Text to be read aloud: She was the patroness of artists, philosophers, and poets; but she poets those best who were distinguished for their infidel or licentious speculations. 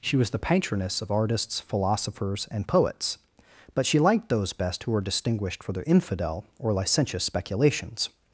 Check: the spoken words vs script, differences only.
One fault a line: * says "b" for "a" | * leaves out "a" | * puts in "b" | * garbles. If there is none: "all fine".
* says "liked" for "poets"